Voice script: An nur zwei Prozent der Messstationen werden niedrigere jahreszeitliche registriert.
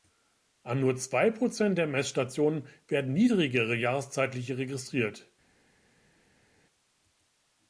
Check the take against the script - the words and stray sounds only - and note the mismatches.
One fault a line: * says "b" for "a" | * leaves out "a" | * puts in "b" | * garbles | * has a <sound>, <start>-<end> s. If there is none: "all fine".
all fine